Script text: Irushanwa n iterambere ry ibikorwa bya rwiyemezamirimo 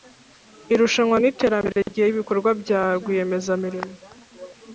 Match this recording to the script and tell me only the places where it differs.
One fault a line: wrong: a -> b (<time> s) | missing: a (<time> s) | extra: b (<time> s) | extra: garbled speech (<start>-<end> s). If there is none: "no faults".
no faults